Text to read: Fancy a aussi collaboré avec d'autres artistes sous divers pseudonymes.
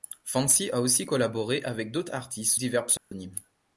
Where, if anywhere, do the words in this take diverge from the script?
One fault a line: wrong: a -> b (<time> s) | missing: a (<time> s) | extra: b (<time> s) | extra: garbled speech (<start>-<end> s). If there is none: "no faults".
missing: sous (2.6 s)